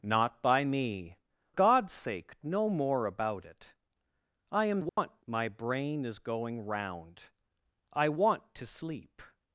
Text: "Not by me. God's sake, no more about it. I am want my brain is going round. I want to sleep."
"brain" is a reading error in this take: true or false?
false